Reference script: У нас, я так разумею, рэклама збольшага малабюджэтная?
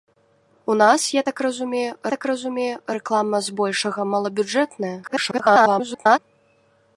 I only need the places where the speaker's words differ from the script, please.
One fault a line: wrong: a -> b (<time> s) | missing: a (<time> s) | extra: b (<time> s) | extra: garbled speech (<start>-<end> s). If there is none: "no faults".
extra: так разумею (2.1 s)
extra: garbled speech (5.0-6.2 s)